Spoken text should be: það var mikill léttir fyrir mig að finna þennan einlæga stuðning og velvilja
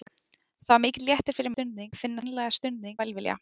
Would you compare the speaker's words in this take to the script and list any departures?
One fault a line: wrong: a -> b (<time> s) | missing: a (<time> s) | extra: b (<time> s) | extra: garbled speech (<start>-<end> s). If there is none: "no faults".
wrong: mig -> stuðning (1.5 s)
missing: þennan (2.2 s)
missing: og (3.0 s)